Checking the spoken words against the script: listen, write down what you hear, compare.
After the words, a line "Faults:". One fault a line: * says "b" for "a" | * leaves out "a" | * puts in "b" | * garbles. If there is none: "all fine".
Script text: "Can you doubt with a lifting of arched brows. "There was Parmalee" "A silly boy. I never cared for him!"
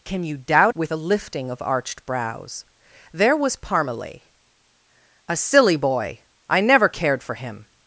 "Can you doubt with a lifting of arched brows. "There was Parmalee" "A silly boy. I never cared for him!"
Faults:
all fine